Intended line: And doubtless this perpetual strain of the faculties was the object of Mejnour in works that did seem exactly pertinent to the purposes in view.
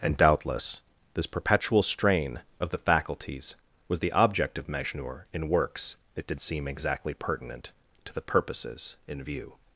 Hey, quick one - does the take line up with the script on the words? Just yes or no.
yes